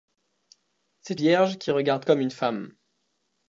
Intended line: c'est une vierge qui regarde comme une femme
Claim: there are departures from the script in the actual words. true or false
true